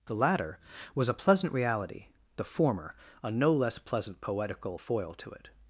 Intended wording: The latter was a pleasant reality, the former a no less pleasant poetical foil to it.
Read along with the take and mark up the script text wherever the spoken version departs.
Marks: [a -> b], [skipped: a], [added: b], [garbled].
The latter was a pleasant reality, the former a no less pleasant poetical foil to it.